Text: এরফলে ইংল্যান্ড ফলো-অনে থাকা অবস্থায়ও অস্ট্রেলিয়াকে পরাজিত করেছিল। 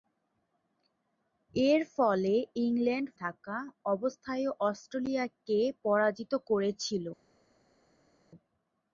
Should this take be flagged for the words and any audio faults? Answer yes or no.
yes